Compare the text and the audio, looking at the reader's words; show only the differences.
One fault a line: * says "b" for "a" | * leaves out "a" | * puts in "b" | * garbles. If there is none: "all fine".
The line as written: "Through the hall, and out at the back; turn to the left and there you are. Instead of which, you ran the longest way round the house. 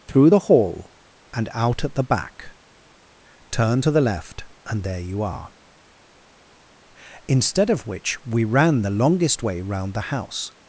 * says "we" for "you"